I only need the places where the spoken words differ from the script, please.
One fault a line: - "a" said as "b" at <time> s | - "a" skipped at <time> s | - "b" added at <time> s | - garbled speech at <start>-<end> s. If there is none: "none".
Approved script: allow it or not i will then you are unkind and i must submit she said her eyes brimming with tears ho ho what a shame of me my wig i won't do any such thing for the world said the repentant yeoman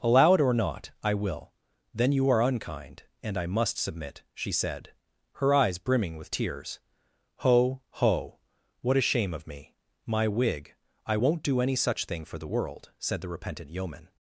none